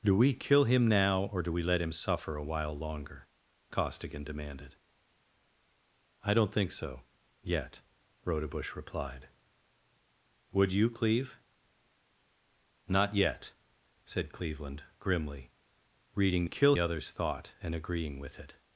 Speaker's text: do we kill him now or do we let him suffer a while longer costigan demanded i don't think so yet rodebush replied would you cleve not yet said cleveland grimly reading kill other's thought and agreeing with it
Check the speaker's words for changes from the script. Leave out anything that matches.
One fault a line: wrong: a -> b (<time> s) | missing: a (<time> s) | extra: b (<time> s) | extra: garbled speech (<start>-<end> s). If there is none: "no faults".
no faults